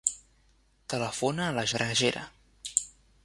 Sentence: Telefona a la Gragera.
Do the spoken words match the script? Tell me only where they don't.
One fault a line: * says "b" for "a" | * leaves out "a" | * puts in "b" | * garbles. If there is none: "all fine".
all fine